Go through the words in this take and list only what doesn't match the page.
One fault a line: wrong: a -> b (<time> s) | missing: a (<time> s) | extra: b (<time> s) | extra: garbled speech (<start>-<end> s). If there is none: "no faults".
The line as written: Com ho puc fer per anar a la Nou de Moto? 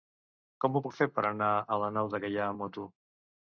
extra: Gaià amb (2.3 s)